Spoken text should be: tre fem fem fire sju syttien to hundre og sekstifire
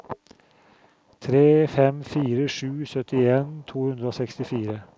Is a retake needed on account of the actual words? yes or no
yes